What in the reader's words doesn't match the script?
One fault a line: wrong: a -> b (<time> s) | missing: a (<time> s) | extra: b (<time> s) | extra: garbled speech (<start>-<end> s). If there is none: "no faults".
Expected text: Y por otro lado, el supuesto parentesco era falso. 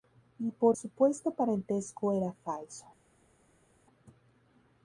missing: otro lado el (0.8 s)